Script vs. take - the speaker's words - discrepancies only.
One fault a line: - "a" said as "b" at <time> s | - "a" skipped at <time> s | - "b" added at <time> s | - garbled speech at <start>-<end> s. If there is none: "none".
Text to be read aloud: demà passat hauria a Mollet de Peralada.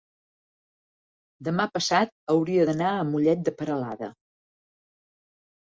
- "d'anar" added at 2.7 s